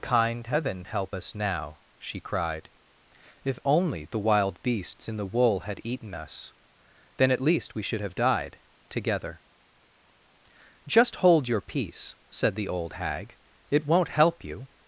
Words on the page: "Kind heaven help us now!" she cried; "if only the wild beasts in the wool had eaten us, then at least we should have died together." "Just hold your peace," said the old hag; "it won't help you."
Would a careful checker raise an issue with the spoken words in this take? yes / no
no